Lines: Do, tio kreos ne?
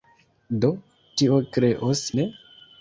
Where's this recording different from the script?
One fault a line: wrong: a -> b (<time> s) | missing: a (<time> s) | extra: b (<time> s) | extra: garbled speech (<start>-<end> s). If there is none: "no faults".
no faults